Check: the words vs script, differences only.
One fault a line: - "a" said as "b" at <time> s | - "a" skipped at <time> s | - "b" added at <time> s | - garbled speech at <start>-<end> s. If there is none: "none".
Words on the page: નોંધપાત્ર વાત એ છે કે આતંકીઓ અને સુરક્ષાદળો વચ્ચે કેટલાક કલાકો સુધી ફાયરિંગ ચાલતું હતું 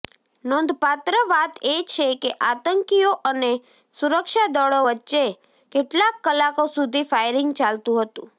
none